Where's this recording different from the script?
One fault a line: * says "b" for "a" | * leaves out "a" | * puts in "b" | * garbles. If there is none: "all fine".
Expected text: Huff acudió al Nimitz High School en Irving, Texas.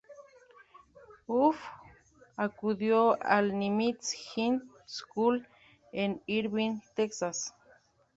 all fine